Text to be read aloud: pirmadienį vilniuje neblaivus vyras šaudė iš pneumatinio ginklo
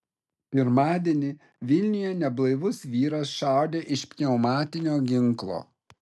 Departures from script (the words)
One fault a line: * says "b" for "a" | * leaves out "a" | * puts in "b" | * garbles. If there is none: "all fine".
all fine